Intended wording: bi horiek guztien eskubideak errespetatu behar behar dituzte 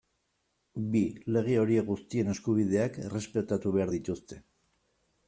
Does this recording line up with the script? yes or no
no